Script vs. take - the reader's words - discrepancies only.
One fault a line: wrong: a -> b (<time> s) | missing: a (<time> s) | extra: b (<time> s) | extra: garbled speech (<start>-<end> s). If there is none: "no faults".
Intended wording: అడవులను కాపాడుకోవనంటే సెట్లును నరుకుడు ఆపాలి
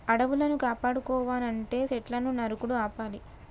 no faults